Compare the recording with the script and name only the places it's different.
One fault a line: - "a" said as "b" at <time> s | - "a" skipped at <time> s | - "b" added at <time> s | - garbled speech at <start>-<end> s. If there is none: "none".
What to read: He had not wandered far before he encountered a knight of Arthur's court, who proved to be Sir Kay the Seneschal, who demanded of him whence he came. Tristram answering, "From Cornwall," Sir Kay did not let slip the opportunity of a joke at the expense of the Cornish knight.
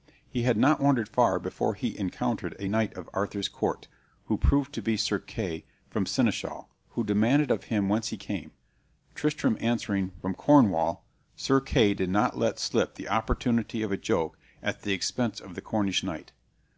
none